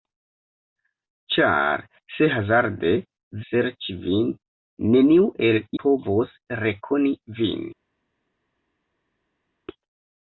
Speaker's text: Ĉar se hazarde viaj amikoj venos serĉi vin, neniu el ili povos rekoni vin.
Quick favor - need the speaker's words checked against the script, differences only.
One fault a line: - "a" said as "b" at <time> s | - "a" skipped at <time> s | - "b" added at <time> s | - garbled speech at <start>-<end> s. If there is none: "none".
- "viaj amikoj venos" skipped at 2.9 s
- "ili" skipped at 5.6 s